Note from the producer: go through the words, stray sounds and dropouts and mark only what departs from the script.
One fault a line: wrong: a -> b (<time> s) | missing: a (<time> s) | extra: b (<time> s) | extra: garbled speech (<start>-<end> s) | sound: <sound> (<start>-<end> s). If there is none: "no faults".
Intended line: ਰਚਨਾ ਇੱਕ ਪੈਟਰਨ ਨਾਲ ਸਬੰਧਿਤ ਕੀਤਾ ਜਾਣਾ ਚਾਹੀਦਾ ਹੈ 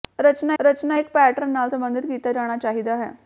extra: ਰਚਨਾ (0.6 s)